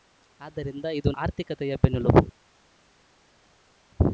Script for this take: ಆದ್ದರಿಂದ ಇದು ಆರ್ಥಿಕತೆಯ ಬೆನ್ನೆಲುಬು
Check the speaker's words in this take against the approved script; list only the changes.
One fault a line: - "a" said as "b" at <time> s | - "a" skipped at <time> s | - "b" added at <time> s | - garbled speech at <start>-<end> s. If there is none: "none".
none